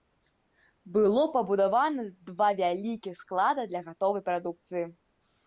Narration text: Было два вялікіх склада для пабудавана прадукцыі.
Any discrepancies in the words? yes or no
yes